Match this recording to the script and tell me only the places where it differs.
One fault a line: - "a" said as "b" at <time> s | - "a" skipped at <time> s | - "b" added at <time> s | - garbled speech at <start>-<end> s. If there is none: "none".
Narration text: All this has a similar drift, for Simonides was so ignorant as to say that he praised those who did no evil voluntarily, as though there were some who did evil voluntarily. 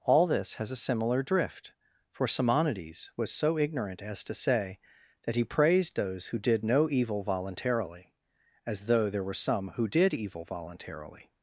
none